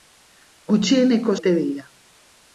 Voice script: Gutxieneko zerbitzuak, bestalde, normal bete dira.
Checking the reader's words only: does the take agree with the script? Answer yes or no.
no